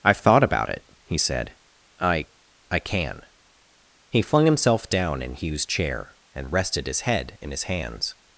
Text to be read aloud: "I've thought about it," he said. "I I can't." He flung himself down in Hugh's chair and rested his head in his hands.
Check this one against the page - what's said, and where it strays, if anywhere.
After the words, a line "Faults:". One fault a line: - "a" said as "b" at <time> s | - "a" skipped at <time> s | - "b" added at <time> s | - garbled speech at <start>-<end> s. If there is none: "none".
"I've thought about it," he said. "I I can." He flung himself down in Hugh's chair and rested his head in his hands.
Faults:
- "can't" said as "can" at 2.8 s